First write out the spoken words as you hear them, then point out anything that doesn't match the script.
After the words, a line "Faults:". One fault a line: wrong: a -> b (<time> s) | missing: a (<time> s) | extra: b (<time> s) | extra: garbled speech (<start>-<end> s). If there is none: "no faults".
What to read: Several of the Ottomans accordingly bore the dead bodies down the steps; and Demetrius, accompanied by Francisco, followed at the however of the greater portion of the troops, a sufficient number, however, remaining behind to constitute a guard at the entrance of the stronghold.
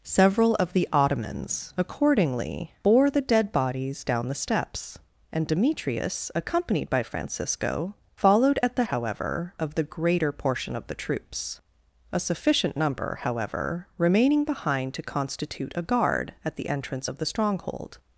Several of the Ottomans accordingly bore the dead bodies down the steps; and Demetrius, accompanied by Francisco, followed at the however of the greater portion of the troops, a sufficient number, however, remaining behind to constitute a guard at the entrance of the stronghold.
Faults:
no faults